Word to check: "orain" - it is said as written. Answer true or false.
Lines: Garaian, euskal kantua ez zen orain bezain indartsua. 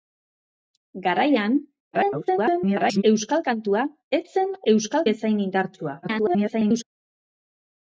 false